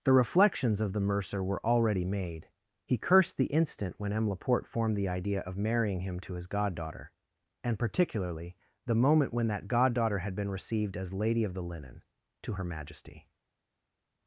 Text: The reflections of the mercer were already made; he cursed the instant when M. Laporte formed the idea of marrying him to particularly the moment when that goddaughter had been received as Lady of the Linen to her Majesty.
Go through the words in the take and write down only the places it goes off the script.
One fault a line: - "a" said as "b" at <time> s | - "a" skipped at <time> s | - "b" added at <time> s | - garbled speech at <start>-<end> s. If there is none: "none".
- "his goddaughter and" added at 6.3 s